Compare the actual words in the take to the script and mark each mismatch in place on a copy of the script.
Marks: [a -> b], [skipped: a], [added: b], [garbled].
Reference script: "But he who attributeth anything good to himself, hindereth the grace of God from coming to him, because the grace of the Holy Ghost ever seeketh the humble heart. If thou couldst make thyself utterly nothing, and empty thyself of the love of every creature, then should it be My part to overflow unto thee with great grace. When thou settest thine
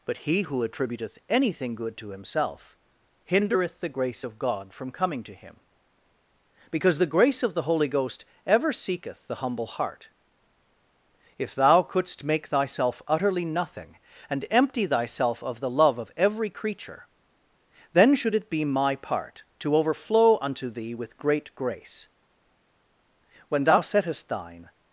"But he who attributeth anything good to himself, hindereth the grace of God from coming to him, because the grace of the Holy Ghost ever seeketh the humble heart. If thou couldst make thyself utterly nothing, and empty thyself of the love of every creature, then should it be My part to overflow unto thee with great grace. When thou settest thine